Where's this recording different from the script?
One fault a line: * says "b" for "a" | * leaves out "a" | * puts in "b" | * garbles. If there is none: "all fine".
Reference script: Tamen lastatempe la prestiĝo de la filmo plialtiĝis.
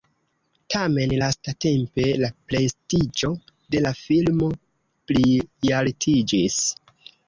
all fine